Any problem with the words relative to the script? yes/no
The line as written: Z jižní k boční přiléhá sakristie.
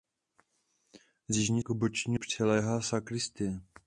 no